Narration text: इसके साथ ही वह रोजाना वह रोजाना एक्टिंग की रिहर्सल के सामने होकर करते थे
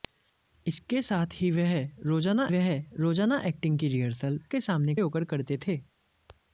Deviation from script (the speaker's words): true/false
false